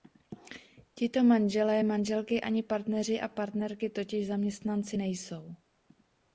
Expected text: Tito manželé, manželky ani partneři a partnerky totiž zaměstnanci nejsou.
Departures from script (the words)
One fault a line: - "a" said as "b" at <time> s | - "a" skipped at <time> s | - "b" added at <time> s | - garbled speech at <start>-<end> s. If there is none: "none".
none